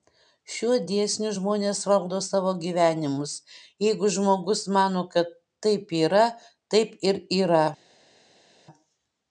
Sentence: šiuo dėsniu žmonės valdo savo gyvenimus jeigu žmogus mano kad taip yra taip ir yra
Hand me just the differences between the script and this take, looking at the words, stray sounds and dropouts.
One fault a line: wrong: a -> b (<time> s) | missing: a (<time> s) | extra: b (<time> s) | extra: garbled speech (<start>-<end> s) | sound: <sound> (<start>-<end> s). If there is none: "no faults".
no faults